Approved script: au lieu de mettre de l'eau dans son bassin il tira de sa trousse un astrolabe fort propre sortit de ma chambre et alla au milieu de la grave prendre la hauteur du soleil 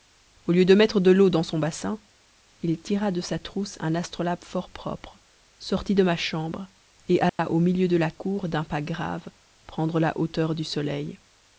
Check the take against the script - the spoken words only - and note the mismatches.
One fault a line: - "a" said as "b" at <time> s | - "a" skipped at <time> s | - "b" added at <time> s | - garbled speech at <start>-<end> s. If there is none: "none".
- "cour d'un pas" added at 8.1 s